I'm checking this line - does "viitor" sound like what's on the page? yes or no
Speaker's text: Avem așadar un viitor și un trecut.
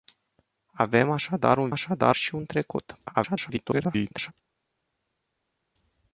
no